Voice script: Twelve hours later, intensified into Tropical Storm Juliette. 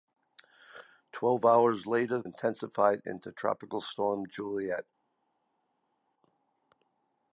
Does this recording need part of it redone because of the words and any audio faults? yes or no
no